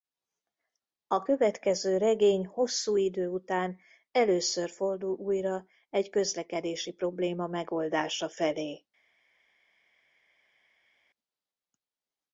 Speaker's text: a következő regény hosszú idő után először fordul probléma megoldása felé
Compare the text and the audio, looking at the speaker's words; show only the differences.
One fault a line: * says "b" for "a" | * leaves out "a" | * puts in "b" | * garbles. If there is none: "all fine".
* puts in "újra egy közlekedési"